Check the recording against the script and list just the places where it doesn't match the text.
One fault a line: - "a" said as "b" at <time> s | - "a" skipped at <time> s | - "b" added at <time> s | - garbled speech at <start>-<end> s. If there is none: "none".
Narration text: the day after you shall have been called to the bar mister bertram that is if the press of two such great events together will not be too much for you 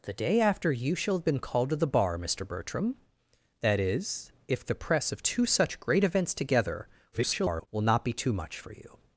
- garbled speech at 7.1-7.7 s